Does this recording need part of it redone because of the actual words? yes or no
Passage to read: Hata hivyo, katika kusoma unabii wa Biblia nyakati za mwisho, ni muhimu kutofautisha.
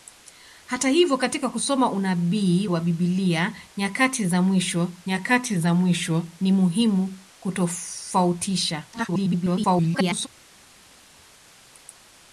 yes